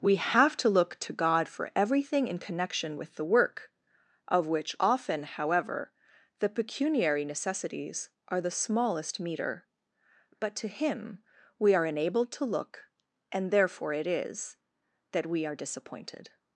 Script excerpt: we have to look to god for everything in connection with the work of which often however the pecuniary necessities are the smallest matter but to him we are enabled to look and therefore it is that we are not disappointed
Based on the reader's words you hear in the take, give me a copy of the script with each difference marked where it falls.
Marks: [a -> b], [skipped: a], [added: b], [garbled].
we have to look to god for everything in connection with the work of which often however the pecuniary necessities are the smallest [matter -> meter] but to him we are enabled to look and therefore it is that we are [skipped: not] disappointed